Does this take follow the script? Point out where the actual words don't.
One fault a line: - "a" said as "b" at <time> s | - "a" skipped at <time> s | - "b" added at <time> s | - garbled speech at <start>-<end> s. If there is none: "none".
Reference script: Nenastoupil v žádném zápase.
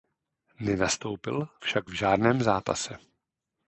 - "však" added at 1.6 s